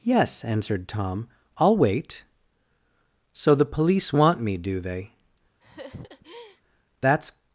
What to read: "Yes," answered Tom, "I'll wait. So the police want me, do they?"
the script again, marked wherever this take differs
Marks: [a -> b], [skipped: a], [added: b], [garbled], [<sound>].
"Yes," answered Tom, "I'll wait. So the police want me, do they?" [laugh] [added: That's]